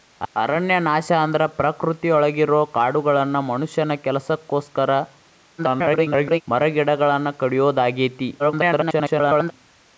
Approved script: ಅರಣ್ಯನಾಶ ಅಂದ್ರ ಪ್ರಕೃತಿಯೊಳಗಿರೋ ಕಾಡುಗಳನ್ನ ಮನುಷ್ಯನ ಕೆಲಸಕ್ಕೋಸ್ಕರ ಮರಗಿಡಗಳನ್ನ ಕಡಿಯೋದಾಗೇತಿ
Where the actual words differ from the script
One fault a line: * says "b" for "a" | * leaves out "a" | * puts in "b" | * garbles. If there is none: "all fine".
* garbles
* garbles